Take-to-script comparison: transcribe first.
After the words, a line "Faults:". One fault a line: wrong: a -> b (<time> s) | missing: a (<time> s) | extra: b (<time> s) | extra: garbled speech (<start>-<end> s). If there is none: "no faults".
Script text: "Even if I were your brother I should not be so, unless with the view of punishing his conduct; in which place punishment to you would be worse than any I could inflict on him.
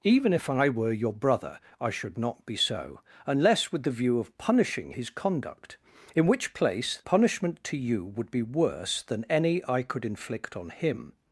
"Even if I were your brother I should not be so, unless with the view of punishing his conduct; in which place punishment to you would be worse than any I could inflict on him.
Faults:
no faults